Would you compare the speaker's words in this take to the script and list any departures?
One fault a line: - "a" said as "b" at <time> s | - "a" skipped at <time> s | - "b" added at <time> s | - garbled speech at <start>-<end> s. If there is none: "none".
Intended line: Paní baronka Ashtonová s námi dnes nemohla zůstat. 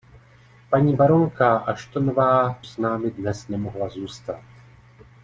none